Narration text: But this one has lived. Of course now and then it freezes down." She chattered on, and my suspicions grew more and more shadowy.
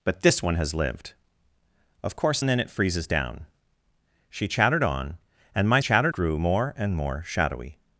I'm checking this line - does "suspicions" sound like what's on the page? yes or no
no